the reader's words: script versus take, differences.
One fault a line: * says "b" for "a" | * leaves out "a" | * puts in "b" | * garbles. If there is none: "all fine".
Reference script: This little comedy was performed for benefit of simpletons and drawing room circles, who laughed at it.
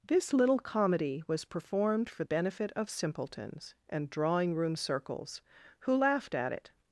all fine